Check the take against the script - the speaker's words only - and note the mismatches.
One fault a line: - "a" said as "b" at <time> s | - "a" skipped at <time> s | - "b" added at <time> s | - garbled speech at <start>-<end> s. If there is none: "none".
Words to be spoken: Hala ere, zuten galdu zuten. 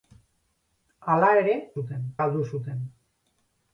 none